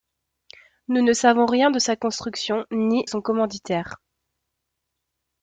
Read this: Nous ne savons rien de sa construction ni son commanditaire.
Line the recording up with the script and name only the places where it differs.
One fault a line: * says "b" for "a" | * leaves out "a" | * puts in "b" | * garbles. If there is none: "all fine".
all fine